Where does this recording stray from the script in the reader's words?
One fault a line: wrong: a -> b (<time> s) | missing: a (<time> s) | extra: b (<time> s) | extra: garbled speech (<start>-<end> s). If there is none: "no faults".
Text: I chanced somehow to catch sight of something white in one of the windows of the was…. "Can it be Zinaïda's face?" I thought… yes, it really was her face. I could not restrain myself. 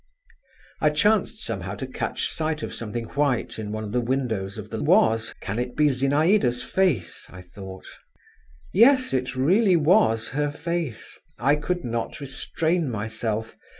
no faults